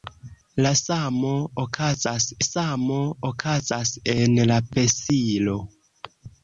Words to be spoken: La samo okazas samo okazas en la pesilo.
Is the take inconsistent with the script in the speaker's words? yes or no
no